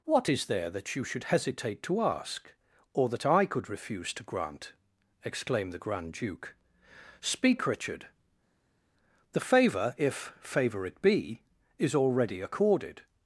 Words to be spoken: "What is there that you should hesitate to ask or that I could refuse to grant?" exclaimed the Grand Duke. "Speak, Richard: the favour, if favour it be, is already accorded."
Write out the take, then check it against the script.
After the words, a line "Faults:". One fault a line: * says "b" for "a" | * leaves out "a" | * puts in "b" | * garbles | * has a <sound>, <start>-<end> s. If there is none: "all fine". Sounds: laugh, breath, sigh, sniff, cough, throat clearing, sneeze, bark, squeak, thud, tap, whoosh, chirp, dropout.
"What is there that you should hesitate to ask or that I could refuse to grant?" exclaimed the Grand Duke. "Speak, Richard: the favour, if favour it be, is already accorded."
Faults:
all fine